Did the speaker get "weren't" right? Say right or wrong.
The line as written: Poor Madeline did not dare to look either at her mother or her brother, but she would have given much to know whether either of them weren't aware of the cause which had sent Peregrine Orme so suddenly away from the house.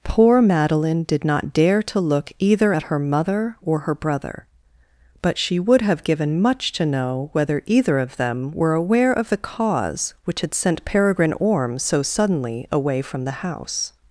wrong